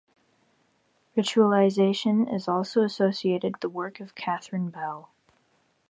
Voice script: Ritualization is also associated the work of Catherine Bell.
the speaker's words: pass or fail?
pass